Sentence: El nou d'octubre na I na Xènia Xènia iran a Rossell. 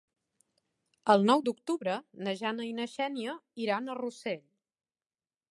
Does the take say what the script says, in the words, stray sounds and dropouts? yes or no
no